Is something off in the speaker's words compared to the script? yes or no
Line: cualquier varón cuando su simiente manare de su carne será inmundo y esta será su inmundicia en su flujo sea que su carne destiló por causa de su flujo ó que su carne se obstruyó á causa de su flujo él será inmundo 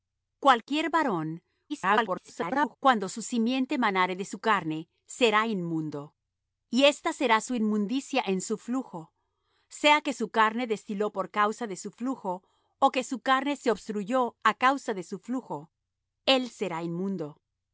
yes